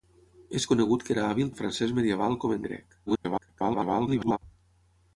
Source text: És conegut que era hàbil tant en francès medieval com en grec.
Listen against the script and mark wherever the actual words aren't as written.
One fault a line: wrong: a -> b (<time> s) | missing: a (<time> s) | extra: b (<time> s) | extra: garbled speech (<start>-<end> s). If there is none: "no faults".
missing: tant (1.5 s)
extra: garbled speech (3.1-4.4 s)